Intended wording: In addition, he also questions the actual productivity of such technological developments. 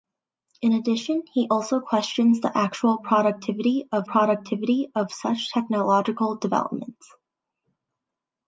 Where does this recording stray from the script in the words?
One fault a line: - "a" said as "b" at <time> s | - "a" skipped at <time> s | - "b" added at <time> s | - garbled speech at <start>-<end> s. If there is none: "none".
- "productivity of" added at 4.0 s